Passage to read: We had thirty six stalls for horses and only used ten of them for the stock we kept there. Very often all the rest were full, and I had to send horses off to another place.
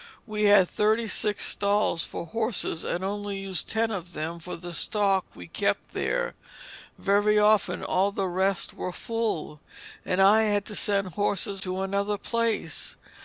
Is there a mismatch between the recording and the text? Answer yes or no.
yes